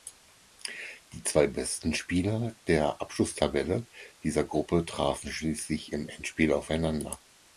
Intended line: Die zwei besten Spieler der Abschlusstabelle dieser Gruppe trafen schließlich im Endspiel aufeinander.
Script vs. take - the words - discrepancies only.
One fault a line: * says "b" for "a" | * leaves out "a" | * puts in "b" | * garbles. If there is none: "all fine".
all fine